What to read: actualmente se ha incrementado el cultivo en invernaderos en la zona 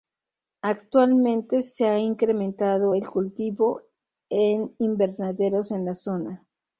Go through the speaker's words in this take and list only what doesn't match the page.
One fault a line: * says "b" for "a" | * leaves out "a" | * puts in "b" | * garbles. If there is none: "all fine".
all fine